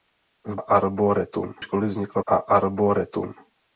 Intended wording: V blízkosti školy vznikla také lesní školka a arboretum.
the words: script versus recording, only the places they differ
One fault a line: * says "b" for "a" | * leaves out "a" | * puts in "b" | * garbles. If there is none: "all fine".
* says "arboretum" for "blízkosti"
* leaves out "také lesní školka"